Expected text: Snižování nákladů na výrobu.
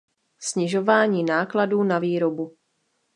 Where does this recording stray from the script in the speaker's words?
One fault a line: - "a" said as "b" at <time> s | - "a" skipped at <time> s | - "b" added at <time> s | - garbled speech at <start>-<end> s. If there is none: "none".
none